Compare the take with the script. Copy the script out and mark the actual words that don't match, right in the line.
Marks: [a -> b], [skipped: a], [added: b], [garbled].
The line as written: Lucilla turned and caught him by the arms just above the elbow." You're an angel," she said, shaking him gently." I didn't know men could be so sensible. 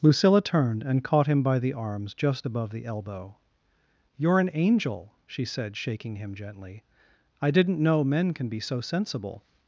Lucilla turned and caught him by the arms just above the elbow." You're an angel," she said, shaking him gently." I didn't know men [could -> can] be so sensible.